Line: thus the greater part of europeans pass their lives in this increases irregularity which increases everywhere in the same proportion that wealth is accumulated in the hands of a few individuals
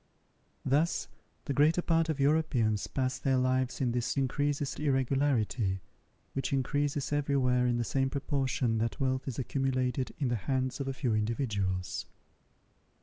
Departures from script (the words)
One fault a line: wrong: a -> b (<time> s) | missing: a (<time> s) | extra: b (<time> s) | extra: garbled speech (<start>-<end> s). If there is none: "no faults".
no faults